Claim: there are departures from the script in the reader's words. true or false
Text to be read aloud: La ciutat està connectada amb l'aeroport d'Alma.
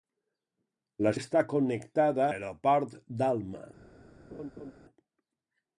true